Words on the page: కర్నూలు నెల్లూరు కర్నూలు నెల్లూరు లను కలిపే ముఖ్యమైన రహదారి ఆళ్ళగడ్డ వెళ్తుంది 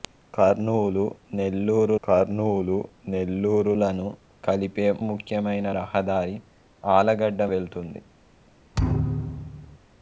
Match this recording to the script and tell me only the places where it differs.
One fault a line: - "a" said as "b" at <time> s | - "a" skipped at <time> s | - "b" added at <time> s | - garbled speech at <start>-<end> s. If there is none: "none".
none